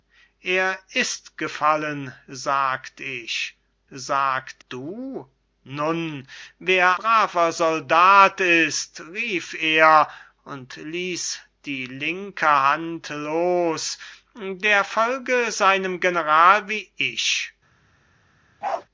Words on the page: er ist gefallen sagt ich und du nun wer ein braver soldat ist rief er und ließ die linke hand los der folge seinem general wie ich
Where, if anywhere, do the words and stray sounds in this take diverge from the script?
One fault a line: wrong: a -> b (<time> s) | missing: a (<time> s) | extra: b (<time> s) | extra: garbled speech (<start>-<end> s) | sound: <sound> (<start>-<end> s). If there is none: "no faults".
wrong: und -> sagt (3.9 s)
missing: ein (7.0 s)
sound: bark (18.6-18.9 s)